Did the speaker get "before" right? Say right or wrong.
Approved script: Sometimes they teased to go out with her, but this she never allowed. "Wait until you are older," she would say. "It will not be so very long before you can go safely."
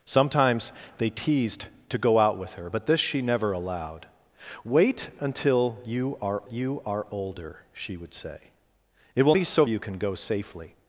wrong